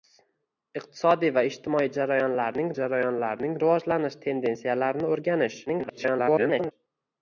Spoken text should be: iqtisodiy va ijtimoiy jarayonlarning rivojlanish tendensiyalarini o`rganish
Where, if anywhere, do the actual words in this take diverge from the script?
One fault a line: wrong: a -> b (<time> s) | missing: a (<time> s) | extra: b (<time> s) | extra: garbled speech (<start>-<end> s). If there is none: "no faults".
extra: jarayonlarning (2.8 s)
extra: garbled speech (5.7-6.7 s)